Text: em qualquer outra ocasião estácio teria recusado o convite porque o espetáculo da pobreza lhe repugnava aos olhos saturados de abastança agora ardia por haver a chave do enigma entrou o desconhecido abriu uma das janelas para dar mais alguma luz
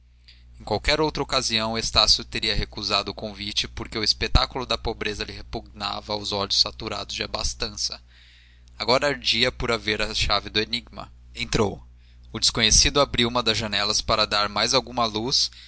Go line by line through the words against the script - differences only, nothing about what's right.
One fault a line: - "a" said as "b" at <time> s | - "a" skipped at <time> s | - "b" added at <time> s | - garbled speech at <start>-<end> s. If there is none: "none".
none